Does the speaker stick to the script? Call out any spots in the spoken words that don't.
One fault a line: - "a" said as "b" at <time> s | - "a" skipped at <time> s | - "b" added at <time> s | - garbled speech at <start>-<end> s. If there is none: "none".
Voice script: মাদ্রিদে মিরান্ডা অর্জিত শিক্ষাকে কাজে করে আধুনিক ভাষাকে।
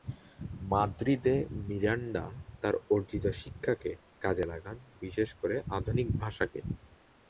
- "তার" added at 2.6 s
- "লাগান বিশেষ" added at 4.5 s